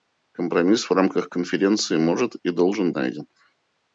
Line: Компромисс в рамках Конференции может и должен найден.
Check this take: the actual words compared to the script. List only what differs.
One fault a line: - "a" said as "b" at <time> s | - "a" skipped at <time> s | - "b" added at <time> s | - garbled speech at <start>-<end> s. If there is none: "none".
none